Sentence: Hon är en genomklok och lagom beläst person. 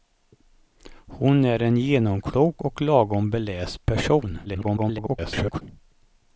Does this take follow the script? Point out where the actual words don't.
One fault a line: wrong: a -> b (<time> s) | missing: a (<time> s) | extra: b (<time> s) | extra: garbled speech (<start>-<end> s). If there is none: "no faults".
extra: garbled speech (4.4-5.6 s)